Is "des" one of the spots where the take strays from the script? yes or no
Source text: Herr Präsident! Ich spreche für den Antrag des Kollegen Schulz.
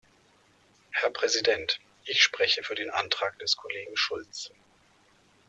no